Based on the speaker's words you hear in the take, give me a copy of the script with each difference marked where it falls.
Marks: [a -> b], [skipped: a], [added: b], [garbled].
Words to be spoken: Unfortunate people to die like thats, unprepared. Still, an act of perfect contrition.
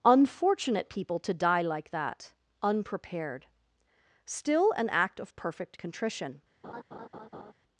Unfortunate people to die like [thats, -> that] unprepared. Still, an act of perfect contrition.